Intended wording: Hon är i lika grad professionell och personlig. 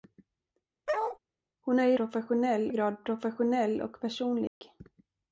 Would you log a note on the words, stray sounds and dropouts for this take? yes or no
yes